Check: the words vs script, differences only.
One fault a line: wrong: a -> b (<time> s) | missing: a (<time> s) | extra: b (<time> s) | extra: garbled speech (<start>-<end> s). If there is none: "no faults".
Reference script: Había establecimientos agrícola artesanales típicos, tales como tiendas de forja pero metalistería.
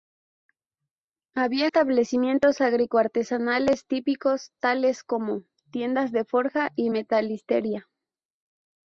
wrong: pero -> y (6.8 s)